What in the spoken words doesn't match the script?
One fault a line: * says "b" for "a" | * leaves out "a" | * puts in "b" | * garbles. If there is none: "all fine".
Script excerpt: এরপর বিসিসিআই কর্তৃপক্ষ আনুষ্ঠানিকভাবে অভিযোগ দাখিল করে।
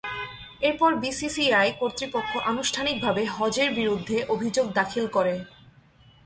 * puts in "হজের বিরুদ্ধে"